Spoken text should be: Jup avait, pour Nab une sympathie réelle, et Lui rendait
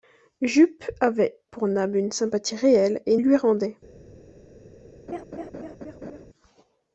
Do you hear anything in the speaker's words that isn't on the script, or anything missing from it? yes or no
no